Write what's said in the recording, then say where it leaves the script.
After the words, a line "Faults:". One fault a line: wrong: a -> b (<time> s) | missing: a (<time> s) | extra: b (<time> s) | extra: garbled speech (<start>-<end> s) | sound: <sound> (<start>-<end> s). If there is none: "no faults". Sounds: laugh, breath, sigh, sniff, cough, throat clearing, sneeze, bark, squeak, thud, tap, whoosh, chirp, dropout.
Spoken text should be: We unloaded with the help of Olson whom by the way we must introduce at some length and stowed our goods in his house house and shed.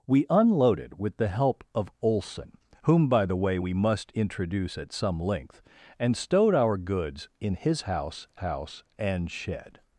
We unloaded with the help of Olson whom by the way we must introduce at some length and stowed our goods in his house house and shed.
Faults:
no faults